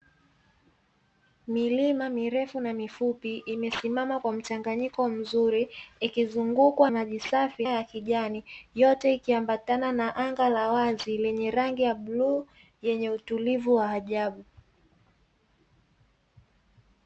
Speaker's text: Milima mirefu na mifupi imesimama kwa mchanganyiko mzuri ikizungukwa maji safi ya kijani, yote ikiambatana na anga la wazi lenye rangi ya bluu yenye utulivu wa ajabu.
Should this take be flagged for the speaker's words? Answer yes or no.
no